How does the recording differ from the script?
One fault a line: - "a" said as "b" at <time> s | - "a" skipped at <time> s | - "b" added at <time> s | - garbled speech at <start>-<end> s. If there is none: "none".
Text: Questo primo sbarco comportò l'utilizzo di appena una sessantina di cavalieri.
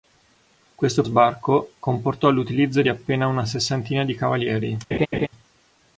- "primo" skipped at 1.0 s